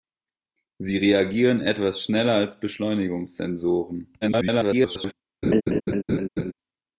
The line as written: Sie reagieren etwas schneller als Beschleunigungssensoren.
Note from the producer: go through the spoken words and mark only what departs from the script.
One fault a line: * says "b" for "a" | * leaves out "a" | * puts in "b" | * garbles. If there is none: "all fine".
* garbles